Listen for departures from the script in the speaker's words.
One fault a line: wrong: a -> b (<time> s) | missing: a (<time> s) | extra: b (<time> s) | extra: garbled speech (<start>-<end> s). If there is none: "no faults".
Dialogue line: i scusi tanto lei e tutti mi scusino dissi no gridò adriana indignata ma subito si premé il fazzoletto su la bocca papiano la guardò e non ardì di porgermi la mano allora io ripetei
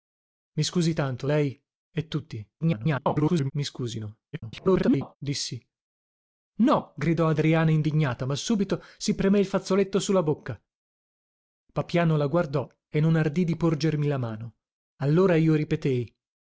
extra: garbled speech (2.6-3.5 s)
extra: garbled speech (4.3-5.2 s)